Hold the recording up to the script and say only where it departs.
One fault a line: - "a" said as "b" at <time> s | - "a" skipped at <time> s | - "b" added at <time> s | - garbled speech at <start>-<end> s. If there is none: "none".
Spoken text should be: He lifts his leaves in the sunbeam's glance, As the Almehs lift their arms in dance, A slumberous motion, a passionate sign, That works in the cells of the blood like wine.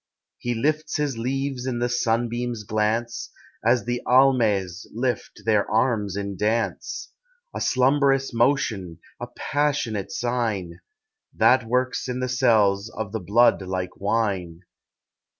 none